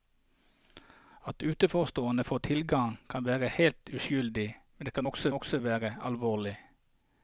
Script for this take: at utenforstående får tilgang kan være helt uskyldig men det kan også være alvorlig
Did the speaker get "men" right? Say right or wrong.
right